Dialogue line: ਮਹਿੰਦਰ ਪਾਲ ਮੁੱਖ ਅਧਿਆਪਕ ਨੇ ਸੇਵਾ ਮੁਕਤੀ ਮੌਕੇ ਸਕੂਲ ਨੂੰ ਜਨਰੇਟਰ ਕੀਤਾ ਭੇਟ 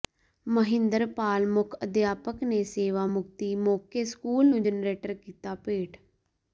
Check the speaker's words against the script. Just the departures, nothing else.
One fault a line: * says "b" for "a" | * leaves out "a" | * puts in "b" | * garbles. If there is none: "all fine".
all fine